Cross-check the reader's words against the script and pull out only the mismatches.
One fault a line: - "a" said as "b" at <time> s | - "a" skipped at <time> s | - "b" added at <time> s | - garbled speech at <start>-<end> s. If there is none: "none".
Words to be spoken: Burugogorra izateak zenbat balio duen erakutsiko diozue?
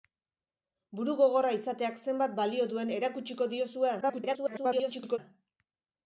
- garbled speech at 4.0-5.2 s